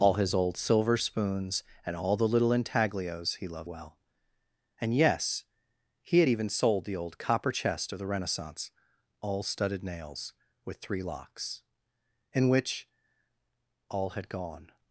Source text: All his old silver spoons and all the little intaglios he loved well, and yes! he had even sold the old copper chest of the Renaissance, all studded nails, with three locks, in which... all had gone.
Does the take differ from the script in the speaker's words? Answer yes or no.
no